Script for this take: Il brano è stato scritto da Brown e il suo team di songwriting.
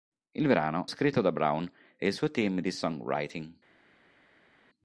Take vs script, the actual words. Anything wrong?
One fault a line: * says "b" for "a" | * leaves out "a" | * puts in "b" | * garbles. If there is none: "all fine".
* leaves out "è stato"